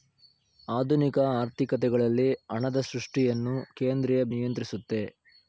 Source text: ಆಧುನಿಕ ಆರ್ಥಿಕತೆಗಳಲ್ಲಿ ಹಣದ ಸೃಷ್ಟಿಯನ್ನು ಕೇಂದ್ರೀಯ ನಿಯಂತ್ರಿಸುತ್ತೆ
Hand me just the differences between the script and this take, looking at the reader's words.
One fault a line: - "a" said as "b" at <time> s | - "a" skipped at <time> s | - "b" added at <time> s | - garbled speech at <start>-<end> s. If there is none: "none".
none